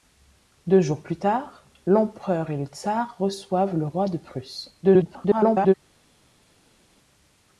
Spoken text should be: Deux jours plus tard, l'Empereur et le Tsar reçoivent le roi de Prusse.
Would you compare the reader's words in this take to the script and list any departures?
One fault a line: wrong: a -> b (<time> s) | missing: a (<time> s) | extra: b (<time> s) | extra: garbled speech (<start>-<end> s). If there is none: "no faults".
extra: garbled speech (4.8-5.7 s)